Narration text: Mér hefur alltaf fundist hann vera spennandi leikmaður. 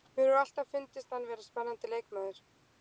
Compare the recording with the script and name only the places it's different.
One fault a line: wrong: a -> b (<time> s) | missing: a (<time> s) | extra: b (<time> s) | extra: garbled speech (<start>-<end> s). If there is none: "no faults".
no faults